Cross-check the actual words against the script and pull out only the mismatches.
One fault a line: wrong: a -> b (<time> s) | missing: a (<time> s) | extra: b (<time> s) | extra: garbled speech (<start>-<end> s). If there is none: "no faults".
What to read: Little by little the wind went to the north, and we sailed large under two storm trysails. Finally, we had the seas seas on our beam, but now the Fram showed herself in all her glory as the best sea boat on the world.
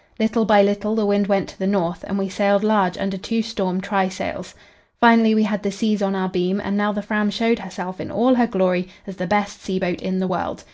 missing: seas (6.0 s)
wrong: but -> and (6.6 s)
wrong: on -> in (10.0 s)